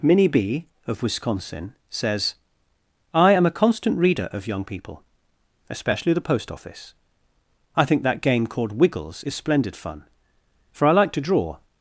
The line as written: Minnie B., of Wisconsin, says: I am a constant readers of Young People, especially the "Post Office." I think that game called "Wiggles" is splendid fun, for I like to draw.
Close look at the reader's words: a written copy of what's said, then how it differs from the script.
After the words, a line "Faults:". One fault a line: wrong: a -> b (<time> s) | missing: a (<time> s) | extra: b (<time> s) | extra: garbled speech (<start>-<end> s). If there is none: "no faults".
Minnie B., of Wisconsin, says: I am a constant reader of Young People, especially the "Post Office." I think that game called "Wiggles" is splendid fun, for I like to draw.
Faults:
wrong: readers -> reader (4.0 s)